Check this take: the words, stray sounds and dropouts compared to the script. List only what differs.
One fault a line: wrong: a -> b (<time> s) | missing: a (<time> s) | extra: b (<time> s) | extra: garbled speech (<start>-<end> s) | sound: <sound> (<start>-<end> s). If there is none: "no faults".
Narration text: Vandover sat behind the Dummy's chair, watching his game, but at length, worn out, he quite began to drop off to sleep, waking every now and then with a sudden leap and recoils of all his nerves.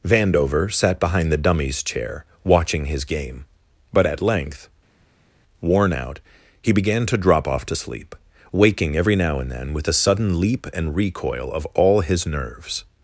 missing: quite (6.7 s)
wrong: recoils -> recoil (10.9 s)